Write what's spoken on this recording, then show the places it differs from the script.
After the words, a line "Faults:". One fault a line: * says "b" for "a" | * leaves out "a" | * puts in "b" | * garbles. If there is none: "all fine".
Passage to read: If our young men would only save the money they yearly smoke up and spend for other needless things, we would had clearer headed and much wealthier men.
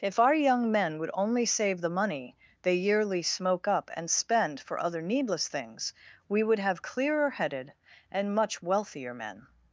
If our young men would only save the money they yearly smoke up and spend for other needless things, we would have clearer headed and much wealthier men.
Faults:
* says "have" for "had"